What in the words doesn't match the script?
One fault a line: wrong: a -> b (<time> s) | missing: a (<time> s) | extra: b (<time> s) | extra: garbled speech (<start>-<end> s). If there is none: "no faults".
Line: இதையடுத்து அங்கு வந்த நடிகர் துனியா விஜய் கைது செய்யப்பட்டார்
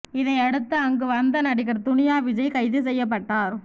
no faults